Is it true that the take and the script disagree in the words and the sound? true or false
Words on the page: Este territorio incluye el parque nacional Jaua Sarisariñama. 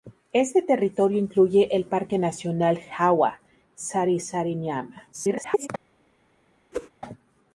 true